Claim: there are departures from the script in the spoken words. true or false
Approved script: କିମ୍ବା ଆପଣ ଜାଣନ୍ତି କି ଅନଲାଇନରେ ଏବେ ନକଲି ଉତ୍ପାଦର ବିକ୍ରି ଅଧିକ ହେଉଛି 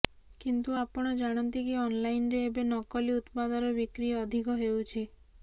true